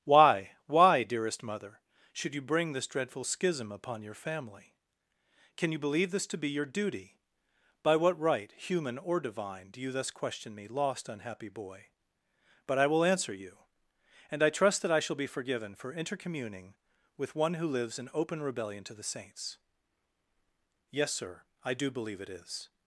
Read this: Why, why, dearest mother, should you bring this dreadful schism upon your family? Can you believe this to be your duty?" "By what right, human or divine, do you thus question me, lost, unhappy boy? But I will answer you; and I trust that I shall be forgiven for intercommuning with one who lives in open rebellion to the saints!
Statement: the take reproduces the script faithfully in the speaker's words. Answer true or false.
false